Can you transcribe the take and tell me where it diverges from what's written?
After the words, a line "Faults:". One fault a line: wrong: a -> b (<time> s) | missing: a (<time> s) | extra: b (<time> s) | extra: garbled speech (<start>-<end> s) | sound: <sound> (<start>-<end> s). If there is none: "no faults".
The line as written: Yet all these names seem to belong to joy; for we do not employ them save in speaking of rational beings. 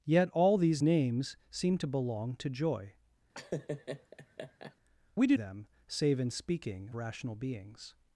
Yet all these names seem to belong to joy; we do them save in speaking rational beings.
Faults:
missing: for (2.9 s)
sound: laugh (3.3-4.8 s)
missing: not employ (5.4 s)
missing: of (6.9 s)